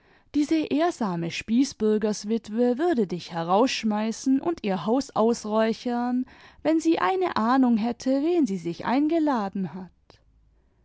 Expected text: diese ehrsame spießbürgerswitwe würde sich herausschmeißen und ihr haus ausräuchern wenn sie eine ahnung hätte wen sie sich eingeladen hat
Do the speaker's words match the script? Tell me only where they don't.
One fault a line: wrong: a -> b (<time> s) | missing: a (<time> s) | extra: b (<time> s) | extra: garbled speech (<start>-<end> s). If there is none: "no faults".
wrong: sich -> dich (3.0 s)